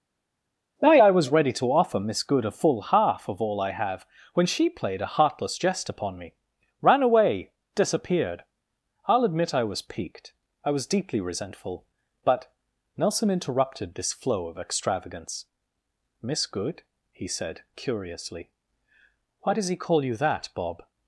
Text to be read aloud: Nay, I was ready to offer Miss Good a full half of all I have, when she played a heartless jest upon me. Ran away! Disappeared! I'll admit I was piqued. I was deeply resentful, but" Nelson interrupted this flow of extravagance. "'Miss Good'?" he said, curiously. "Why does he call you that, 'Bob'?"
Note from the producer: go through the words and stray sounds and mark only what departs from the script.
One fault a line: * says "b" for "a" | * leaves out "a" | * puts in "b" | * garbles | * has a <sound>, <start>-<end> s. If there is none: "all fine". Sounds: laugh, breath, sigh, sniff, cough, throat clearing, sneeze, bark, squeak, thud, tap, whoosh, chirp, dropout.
all fine